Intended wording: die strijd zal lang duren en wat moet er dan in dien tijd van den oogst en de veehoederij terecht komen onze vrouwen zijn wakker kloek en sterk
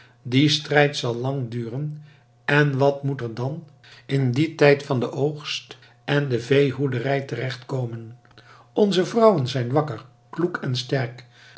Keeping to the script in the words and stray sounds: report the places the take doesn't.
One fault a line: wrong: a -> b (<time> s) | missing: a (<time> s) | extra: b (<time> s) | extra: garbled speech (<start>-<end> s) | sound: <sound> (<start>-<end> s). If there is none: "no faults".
no faults